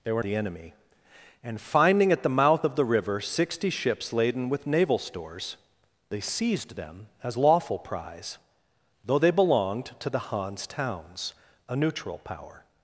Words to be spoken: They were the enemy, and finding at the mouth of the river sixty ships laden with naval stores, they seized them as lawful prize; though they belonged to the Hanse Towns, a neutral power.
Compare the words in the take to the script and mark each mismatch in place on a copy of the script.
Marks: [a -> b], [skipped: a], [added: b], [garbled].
They were the enemy, and finding at the mouth of the river sixty ships laden with naval stores, they seized them as lawful prize; though they belonged to the Hanse Towns, a neutral power.